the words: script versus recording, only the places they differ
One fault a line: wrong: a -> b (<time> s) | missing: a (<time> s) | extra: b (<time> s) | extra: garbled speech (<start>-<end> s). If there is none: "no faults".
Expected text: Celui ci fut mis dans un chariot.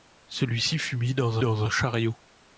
extra: dans (1.4 s)